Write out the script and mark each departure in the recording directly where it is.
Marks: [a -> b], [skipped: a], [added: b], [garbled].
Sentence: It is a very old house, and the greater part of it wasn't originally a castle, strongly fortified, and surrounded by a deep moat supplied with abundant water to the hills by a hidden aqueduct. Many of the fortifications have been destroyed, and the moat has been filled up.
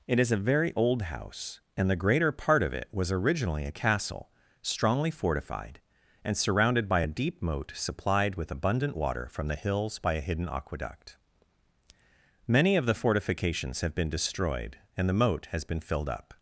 It is a very old house, and the greater part of it [wasn't -> was] originally a castle, strongly fortified, and surrounded by a deep moat supplied with abundant water [to -> from] the hills by a hidden aqueduct. Many of the fortifications have been destroyed, and the moat has been filled up.